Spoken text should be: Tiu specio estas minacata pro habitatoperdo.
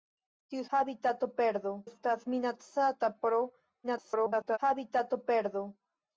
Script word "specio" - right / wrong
wrong